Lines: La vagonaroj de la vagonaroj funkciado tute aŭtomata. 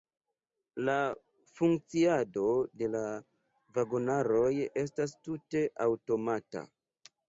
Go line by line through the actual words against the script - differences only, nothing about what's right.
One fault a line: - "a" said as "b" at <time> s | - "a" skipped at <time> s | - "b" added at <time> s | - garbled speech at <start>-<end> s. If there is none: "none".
- "vagonaroj" said as "funkciado" at 1.6 s
- "funkciado" said as "estas" at 4.9 s